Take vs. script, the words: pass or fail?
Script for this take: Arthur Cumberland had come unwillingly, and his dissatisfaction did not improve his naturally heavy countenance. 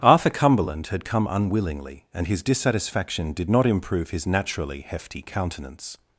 fail